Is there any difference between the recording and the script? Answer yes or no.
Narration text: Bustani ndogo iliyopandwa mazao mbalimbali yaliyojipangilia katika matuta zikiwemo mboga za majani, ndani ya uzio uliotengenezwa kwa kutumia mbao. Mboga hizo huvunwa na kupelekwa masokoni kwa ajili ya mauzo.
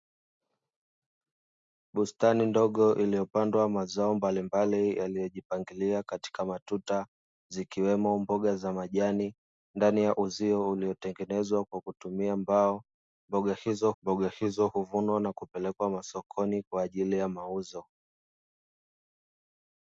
yes